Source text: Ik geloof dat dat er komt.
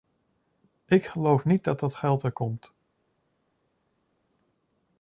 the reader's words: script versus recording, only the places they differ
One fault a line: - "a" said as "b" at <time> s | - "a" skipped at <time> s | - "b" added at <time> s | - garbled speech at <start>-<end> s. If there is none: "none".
- "niet" added at 1.4 s
- "geld" added at 1.9 s